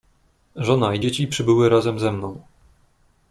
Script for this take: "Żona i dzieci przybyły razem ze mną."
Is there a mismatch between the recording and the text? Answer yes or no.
no